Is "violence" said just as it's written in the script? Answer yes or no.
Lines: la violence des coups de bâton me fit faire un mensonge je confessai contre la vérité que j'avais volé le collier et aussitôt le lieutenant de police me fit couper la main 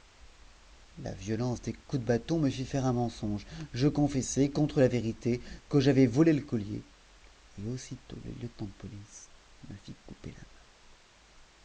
yes